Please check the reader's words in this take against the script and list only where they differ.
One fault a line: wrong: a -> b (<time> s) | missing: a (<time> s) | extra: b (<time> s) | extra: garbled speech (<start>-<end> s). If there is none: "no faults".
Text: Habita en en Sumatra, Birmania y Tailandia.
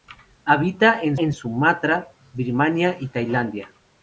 no faults